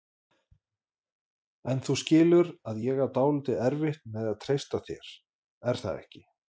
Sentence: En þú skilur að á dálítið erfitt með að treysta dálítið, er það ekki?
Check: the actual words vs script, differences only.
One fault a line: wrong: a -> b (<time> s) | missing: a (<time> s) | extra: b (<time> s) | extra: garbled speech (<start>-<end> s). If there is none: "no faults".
extra: ég (2.8 s)
wrong: dálítið -> þér (4.9 s)